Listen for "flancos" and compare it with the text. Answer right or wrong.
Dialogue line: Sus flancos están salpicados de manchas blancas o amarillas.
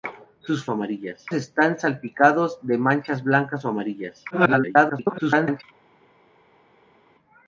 wrong